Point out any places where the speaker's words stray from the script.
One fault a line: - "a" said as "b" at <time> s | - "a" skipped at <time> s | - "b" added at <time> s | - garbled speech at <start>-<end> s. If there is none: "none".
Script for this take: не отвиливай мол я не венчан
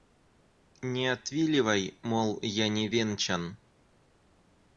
none